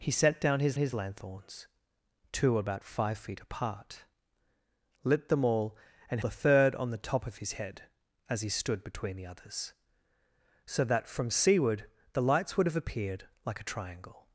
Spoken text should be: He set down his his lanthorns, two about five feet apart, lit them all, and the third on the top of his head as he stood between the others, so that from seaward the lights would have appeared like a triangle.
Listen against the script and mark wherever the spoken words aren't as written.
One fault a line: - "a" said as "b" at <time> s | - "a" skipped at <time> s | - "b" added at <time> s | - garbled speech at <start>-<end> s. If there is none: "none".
none